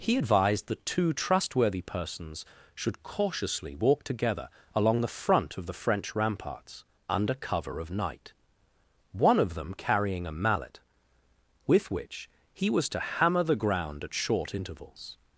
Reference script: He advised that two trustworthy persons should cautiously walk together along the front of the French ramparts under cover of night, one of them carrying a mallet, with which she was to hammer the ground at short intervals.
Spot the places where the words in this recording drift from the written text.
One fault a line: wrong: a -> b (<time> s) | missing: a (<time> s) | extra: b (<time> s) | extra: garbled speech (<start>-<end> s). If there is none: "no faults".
wrong: she -> he (12.5 s)